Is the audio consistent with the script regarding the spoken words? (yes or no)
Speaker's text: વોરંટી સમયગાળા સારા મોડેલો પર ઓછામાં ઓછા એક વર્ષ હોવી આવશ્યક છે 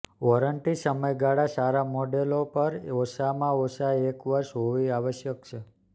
yes